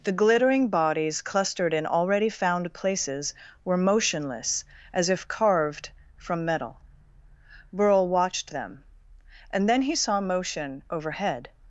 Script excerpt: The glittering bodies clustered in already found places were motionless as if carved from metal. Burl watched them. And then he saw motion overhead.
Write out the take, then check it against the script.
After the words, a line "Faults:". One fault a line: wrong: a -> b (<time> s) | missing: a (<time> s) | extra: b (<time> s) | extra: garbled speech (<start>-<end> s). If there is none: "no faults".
The glittering bodies clustered in already found places were motionless as if carved from metal. Burl watched them. And then he saw motion overhead.
Faults:
no faults